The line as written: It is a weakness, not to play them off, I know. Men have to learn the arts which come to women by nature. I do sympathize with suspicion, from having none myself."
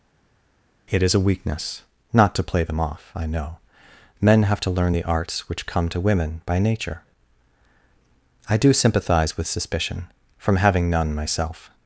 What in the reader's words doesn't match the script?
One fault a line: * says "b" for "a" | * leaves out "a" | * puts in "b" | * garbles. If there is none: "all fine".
all fine